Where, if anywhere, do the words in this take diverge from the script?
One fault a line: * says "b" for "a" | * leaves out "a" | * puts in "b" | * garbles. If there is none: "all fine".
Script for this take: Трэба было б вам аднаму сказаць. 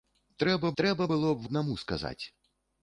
* puts in "трэба"
* leaves out "вам"